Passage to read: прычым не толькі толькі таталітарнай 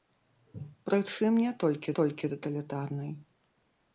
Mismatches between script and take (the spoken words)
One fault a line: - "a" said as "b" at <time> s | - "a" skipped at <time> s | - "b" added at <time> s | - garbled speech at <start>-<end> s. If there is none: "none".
none